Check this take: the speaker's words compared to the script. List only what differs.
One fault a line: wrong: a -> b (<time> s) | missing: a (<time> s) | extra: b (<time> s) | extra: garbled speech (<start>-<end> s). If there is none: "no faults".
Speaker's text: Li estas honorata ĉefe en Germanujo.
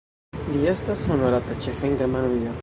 no faults